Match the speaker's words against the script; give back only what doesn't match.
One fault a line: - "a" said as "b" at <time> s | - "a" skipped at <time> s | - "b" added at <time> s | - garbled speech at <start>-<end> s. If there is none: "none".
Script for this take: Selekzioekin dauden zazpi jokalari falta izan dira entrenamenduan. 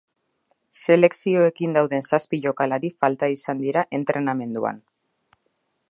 none